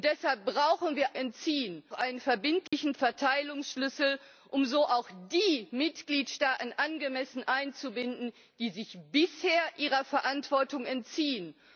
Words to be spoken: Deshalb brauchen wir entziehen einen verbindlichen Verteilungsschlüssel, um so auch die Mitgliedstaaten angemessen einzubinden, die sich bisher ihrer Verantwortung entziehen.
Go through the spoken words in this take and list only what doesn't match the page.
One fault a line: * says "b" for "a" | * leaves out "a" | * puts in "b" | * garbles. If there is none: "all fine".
all fine